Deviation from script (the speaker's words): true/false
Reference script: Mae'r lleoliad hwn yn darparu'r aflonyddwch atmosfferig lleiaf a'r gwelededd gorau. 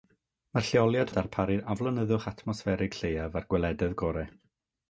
true